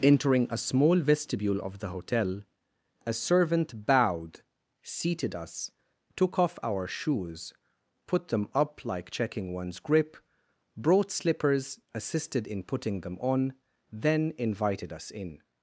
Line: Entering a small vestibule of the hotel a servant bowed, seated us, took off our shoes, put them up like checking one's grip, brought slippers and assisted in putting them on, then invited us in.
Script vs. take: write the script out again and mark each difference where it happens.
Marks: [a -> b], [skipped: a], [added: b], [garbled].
Entering a small vestibule of the hotel a servant bowed, seated us, took off our shoes, put them up like checking one's grip, brought slippers [skipped: and] assisted in putting them on, then invited us in.